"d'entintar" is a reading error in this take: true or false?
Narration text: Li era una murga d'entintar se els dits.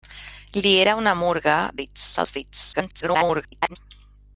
true